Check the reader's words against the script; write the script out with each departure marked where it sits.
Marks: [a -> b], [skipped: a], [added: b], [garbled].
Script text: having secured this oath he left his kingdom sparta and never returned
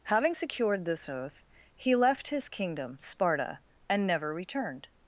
having secured this oath he left his kingdom sparta and never returned